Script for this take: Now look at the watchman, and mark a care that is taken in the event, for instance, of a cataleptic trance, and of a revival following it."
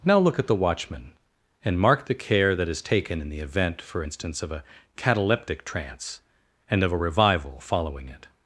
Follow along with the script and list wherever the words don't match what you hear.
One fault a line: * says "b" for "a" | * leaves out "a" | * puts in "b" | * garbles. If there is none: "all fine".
* says "the" for "a"